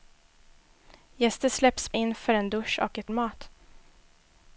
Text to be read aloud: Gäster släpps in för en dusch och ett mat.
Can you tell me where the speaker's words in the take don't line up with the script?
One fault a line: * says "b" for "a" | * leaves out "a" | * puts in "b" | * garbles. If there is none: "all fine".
all fine